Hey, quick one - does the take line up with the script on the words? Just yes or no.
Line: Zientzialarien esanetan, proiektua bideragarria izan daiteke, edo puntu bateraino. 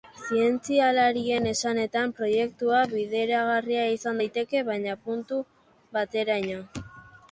no